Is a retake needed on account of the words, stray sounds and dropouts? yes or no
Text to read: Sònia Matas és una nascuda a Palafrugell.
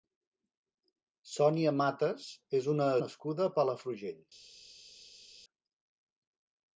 no